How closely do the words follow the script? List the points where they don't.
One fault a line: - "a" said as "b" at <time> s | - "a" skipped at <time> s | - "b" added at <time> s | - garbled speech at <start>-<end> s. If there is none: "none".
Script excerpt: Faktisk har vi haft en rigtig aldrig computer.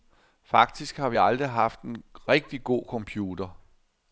- "aldrig" added at 1.2 s
- "aldrig" said as "god" at 2.6 s